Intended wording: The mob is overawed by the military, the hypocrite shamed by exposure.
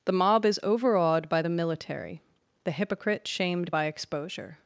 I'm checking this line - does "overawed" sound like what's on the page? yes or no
yes